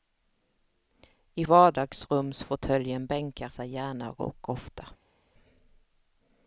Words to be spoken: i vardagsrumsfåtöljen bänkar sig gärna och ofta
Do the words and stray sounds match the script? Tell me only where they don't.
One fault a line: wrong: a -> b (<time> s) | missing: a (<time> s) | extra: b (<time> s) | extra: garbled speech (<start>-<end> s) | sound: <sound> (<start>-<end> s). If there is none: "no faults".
no faults